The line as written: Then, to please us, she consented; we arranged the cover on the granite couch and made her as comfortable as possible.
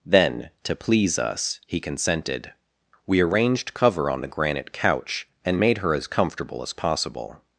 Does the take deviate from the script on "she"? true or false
true